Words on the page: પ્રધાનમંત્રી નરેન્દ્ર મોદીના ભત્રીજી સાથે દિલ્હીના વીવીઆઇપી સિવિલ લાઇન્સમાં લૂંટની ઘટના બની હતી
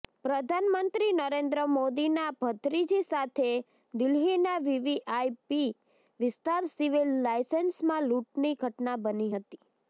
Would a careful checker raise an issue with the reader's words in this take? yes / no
yes